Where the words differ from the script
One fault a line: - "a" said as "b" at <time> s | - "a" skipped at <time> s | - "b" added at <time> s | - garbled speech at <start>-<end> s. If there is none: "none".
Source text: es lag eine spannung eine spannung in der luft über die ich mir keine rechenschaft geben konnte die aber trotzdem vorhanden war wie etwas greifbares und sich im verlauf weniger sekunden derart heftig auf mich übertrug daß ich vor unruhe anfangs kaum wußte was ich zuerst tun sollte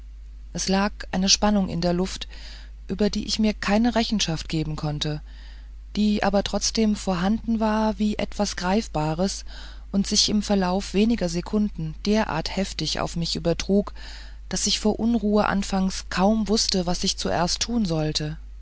- "eine spannung" skipped at 1.7 s